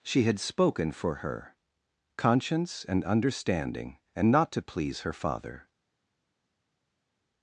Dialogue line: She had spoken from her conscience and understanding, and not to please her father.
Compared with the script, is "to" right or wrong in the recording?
right